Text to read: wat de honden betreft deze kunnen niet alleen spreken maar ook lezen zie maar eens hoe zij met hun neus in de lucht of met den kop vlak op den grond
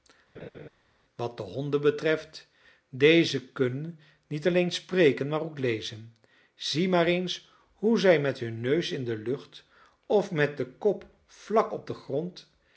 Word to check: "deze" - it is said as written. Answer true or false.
true